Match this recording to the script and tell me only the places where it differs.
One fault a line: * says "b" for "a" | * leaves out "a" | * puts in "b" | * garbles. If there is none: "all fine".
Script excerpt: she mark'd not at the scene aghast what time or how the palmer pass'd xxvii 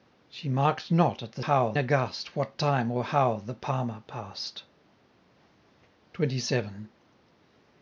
* says "how" for "scene"